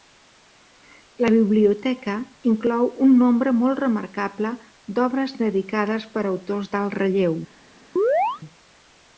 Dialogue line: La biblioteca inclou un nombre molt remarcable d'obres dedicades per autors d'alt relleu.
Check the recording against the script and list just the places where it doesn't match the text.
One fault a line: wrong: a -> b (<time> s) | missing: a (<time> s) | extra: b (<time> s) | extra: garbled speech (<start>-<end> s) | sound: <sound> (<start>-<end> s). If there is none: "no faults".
sound: chirp (8.0-8.4 s)